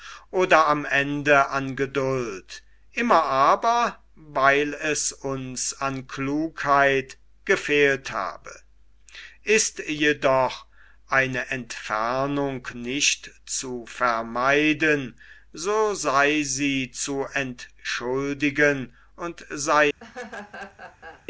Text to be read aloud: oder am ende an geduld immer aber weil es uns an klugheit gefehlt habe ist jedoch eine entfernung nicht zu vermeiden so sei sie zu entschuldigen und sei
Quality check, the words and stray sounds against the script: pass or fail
fail